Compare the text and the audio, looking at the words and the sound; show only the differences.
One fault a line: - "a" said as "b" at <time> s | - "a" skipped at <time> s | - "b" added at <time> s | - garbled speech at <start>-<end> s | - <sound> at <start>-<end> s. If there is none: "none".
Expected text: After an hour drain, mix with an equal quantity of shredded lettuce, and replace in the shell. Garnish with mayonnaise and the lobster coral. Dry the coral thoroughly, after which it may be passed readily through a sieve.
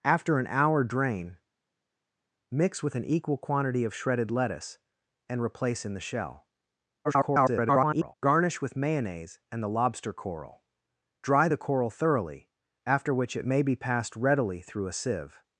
- garbled speech at 7.0-8.1 s